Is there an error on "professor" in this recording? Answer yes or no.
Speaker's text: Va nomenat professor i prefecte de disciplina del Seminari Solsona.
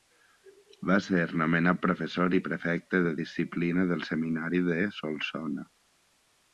no